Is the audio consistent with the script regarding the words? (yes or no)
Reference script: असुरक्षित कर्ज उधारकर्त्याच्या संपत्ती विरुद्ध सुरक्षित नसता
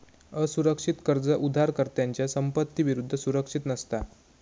yes